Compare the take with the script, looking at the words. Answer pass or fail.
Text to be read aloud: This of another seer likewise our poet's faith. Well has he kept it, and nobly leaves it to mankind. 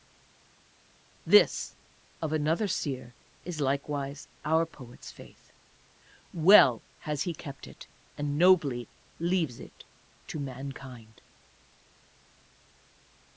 fail